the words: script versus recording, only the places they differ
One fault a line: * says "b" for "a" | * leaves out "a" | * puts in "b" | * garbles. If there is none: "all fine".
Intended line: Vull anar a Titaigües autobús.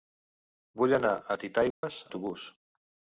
all fine